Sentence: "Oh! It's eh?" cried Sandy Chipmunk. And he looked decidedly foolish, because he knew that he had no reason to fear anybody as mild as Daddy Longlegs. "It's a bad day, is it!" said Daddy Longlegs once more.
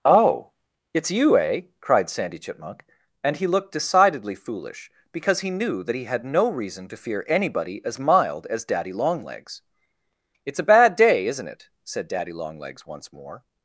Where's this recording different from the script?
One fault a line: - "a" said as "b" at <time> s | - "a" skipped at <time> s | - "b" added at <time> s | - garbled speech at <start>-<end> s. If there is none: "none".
- "you" added at 1.1 s
- "is" said as "isn't" at 11.3 s